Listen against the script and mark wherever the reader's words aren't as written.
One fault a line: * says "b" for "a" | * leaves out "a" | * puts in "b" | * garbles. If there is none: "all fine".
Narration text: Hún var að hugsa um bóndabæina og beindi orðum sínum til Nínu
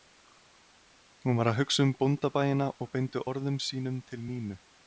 all fine